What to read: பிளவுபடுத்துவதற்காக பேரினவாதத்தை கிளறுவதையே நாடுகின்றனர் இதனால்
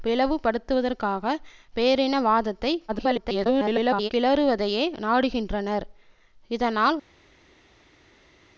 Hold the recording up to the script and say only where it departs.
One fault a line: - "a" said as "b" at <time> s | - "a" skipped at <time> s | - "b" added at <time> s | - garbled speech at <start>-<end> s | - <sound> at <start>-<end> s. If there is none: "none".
- garbled speech at 2.9-4.1 s